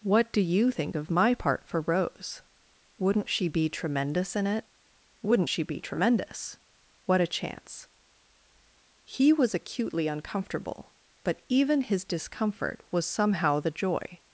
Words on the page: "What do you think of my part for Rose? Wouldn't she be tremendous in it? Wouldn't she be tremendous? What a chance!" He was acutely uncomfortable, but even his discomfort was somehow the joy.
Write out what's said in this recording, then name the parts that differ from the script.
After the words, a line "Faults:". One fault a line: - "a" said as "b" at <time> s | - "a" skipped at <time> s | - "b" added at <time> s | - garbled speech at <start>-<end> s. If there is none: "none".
"What do you think of my part for Rose? Wouldn't she be tremendous in it? Wouldn't she be tremendous? What a chance!" He was acutely uncomfortable, but even his discomfort was somehow the joy.
Faults:
none